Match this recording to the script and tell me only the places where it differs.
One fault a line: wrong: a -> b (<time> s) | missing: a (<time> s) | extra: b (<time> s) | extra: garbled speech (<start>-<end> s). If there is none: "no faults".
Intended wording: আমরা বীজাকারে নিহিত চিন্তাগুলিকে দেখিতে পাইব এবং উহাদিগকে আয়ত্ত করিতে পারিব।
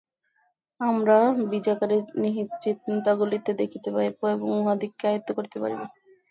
no faults